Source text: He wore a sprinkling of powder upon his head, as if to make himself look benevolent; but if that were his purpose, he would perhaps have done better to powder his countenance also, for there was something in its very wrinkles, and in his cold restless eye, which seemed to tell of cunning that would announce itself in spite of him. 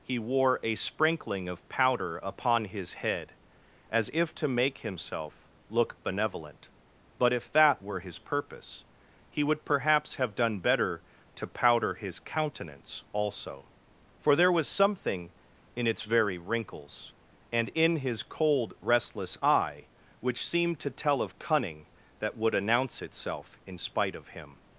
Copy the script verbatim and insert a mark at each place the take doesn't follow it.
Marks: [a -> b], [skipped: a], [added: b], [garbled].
He wore a sprinkling of powder upon his head, as if to make himself look benevolent; but if that were his purpose, he would perhaps have done better to powder his countenance also, for there was something in its very wrinkles, and in his cold restless eye, which seemed to tell of cunning that would announce itself in spite of him.